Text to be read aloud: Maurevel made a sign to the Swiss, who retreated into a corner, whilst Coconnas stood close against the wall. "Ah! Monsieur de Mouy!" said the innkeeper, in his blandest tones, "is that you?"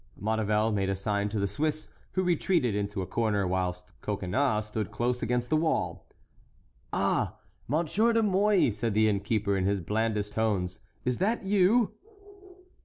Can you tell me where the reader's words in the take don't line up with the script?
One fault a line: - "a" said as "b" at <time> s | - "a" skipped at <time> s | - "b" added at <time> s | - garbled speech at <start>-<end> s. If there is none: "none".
none